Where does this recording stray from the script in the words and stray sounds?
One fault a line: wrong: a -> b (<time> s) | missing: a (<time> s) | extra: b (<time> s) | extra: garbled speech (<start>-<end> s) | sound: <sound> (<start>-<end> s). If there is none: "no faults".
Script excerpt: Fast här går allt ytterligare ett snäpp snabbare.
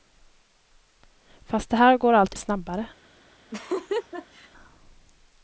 missing: ytterligare ett snäpp (2.4 s)
sound: laugh (3.5-4.5 s)